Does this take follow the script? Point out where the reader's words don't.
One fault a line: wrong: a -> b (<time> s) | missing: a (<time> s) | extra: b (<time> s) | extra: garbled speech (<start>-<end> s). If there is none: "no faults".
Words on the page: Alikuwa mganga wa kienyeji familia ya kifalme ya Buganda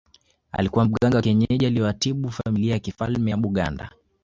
extra: aliyewatibu (1.6 s)